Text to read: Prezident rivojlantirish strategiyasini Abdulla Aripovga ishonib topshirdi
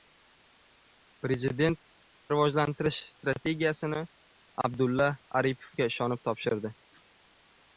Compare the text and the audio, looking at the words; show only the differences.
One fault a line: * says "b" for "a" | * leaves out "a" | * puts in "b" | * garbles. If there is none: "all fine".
all fine